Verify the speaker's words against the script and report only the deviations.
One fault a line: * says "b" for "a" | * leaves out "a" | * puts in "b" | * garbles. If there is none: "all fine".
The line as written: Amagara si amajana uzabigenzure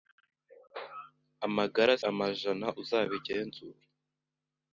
* leaves out "si"